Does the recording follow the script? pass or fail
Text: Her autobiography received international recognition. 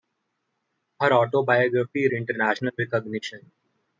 fail